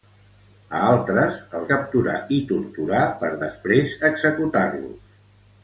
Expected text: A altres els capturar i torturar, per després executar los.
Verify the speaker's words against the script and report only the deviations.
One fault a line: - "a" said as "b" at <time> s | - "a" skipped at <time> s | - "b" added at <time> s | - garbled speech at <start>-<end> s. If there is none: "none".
none